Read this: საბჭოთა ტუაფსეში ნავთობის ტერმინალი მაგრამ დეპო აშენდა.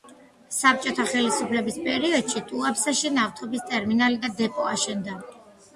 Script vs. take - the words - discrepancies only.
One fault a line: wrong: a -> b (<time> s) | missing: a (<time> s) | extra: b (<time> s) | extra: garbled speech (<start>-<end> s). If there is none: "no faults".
extra: ხელისუფლების პერიოდში (1.1 s)
wrong: მაგრამ -> და (4.3 s)